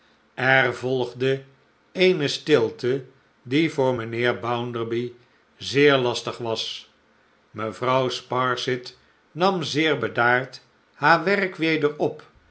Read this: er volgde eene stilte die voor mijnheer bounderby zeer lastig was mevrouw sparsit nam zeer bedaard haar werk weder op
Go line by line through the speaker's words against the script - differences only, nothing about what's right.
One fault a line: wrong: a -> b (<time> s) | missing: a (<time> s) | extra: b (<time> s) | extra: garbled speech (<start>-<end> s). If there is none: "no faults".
no faults